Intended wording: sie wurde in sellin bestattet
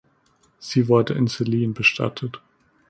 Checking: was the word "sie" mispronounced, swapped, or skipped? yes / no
no